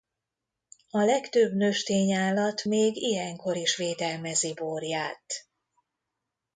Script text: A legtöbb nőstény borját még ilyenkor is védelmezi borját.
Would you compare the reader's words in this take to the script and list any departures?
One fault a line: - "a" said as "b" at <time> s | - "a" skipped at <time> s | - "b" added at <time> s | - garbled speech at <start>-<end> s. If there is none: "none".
- "borját" said as "állat" at 2.1 s